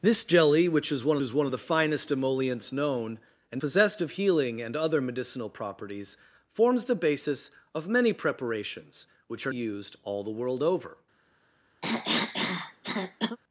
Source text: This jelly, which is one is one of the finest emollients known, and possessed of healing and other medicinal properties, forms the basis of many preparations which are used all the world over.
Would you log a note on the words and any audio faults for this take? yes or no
yes